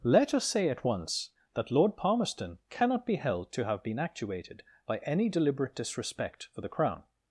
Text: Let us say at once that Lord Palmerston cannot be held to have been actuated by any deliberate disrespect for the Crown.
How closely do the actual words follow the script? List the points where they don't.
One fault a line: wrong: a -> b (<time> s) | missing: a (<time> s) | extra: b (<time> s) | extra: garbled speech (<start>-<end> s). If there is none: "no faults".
no faults